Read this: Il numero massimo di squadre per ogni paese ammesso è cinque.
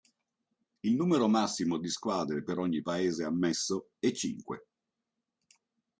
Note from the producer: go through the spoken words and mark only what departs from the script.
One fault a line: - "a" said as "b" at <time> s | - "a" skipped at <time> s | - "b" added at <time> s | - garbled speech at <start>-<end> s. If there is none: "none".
none